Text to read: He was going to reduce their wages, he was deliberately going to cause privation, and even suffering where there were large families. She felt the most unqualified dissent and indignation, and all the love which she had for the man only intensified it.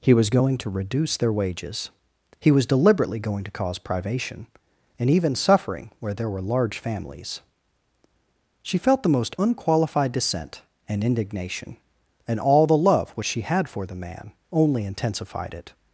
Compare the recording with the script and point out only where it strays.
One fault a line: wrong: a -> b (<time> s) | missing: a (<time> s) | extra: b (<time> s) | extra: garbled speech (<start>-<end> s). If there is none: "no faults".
no faults